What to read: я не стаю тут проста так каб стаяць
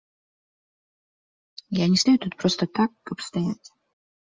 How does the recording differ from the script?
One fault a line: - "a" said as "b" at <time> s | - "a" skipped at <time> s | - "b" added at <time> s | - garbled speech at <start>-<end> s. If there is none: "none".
none